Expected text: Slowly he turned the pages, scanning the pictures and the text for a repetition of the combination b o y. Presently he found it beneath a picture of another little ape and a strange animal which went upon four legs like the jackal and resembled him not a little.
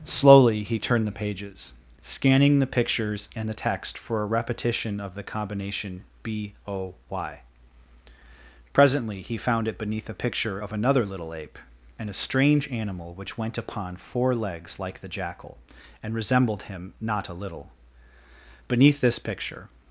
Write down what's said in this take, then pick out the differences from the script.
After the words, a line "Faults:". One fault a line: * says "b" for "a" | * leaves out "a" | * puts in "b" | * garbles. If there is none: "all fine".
Slowly he turned the pages, scanning the pictures and the text for a repetition of the combination b o y. Presently he found it beneath a picture of another little ape and a strange animal which went upon four legs like the jackal and resembled him not a little. Beneath this picture
Faults:
* puts in "Beneath this picture"